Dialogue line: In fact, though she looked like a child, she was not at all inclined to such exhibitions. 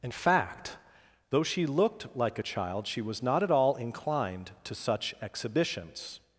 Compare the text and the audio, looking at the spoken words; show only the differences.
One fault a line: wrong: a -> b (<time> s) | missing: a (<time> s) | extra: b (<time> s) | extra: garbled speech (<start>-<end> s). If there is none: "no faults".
no faults